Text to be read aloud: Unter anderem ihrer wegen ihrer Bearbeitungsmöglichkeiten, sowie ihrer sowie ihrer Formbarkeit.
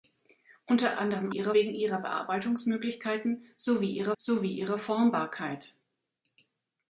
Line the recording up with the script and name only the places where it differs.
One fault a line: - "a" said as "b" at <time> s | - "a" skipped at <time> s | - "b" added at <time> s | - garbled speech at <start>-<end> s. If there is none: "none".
none